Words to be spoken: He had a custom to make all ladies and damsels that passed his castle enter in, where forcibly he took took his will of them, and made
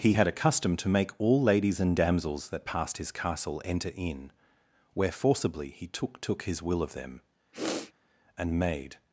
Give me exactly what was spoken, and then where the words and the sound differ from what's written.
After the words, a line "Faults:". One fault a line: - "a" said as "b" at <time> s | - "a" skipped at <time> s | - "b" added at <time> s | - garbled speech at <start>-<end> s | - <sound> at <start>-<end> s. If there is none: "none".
He had a custom to make all ladies and damsels that passed his castle enter in, where forcibly he took took his will of them, and made
Faults:
- sniff at 7.5-7.9 s